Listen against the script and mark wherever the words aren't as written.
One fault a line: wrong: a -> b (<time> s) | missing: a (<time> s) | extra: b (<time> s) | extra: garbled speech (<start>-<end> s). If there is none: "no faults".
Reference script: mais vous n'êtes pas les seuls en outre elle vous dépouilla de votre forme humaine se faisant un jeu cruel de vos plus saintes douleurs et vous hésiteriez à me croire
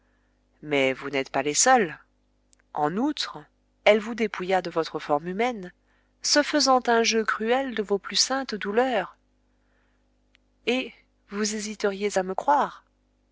no faults